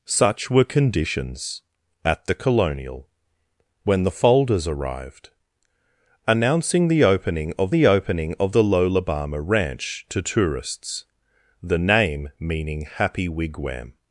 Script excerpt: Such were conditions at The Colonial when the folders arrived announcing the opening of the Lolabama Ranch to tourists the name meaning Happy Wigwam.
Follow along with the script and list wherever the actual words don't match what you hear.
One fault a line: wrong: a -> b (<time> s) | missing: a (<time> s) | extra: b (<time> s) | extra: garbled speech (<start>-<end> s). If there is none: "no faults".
extra: opening of the (7.9 s)